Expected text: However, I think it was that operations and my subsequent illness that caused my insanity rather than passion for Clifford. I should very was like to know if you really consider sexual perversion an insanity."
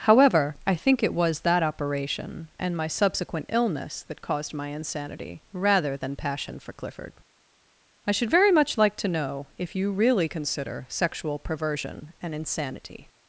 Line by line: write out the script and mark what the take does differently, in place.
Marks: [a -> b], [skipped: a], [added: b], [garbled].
However, I think it was that [operations -> operation] and my subsequent illness that caused my insanity rather than passion for Clifford. I should very [was -> much] like to know if you really consider sexual perversion an insanity."